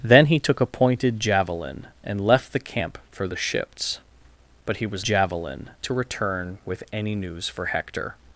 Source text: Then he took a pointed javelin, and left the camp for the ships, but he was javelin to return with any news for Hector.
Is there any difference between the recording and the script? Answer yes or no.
no